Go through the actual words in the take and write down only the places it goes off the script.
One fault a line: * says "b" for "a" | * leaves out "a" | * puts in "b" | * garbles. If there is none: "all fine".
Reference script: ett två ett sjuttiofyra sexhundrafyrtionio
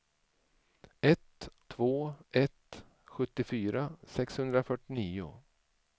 all fine